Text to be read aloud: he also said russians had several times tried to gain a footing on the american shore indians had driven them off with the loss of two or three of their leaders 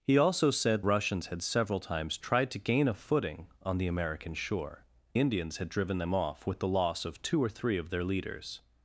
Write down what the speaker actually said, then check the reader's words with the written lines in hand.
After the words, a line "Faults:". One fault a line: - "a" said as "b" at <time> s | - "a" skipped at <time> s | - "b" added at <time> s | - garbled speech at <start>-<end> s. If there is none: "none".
he also said russians had several times tried to gain a footing on the american shore indians had driven them off with the loss of two or three of their leaders
Faults:
none